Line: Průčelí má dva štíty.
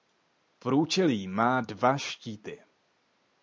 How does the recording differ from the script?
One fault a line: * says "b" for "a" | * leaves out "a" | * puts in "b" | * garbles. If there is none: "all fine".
all fine